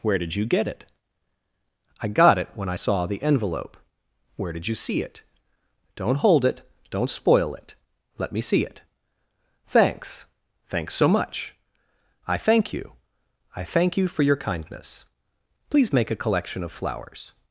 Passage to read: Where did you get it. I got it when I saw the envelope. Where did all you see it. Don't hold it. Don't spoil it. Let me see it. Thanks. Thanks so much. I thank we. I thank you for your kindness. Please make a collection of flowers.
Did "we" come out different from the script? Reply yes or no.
yes